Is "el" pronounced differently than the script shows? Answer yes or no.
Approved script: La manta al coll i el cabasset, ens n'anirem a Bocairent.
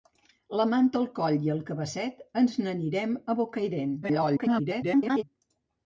no